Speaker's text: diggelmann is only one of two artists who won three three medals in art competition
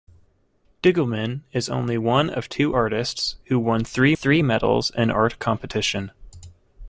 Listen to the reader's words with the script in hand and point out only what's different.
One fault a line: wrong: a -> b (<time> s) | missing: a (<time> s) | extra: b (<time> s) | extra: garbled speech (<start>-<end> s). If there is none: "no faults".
no faults